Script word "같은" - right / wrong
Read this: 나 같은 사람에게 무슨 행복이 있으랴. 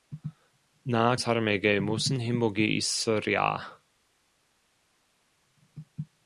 wrong